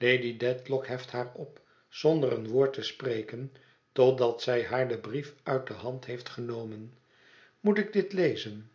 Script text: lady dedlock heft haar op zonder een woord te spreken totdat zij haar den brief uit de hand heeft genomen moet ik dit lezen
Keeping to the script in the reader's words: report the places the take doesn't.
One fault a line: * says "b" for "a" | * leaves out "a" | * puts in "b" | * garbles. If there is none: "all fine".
all fine